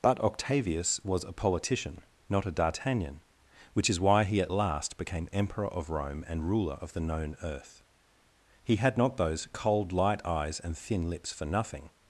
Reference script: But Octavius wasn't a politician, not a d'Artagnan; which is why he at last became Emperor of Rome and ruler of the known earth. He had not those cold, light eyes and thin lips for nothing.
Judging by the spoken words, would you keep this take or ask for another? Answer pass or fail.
fail